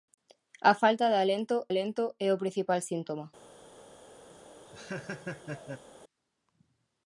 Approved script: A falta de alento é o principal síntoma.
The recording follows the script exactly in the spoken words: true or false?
false